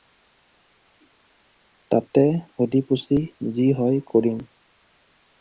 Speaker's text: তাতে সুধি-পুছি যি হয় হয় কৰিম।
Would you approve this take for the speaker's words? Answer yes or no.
no